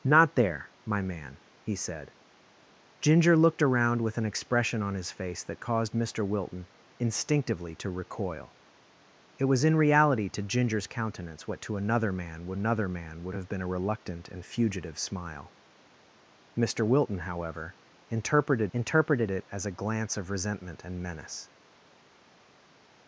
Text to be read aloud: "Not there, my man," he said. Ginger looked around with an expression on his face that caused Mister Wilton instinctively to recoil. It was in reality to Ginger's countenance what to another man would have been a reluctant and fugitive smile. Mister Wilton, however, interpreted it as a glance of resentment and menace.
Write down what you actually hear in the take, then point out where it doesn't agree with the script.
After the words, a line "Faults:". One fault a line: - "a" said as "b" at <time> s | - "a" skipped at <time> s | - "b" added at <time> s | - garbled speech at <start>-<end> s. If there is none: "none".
"Not there, my man," he said. Ginger looked around with an expression on his face that caused Mister Wilton instinctively to recoil. It was in reality to Ginger's countenance what to another man would another man would have been a reluctant and fugitive smile. Mister Wilton, however, interpreted interpreted it as a glance of resentment and menace.
Faults:
- "another man would" added at 12.5 s
- "interpreted" added at 18.7 s